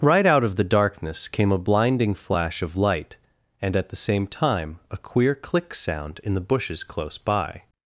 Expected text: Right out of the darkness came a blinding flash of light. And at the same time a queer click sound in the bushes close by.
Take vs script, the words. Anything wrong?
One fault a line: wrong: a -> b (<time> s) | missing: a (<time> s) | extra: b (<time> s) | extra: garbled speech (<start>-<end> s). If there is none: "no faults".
no faults